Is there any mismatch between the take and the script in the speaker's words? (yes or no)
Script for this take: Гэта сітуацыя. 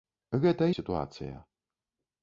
no